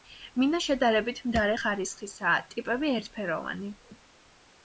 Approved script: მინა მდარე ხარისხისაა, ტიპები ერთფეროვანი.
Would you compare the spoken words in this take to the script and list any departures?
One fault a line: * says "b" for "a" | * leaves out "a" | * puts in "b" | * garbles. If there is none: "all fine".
* puts in "შედარებით"